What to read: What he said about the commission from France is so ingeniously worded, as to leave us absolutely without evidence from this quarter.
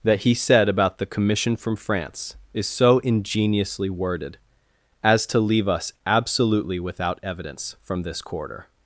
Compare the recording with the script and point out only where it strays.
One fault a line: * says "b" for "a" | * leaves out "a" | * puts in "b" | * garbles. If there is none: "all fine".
* says "That" for "What"